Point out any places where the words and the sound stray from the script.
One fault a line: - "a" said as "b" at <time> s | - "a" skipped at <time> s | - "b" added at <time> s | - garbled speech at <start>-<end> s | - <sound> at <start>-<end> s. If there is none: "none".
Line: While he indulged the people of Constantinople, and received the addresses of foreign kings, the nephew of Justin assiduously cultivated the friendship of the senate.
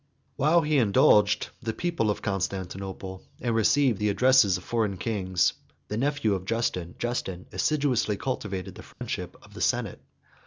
- "Justin" added at 7.0 s
- dropout at 8.9-9.0 s